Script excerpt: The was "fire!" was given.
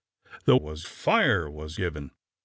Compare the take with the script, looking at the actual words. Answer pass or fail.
pass